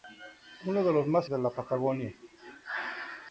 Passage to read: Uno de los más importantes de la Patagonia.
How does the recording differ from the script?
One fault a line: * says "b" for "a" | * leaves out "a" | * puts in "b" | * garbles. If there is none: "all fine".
* leaves out "importantes"